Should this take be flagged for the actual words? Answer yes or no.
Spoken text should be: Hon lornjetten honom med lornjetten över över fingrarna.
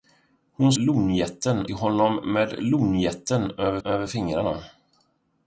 no